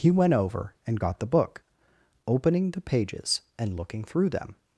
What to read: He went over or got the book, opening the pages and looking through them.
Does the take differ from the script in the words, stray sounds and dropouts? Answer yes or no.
yes